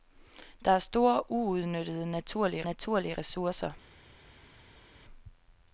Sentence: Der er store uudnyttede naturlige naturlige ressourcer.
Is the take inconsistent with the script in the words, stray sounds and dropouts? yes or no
no